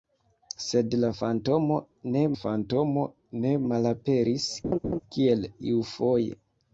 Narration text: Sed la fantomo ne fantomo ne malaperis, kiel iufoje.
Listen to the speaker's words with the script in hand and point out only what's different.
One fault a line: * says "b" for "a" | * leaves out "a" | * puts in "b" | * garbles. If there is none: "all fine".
all fine